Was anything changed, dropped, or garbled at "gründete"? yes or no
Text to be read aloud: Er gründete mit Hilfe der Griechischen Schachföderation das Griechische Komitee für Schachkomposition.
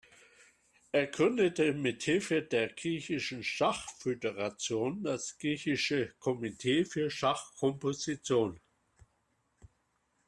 no